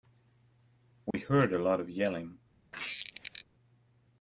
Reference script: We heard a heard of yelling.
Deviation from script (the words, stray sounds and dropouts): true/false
true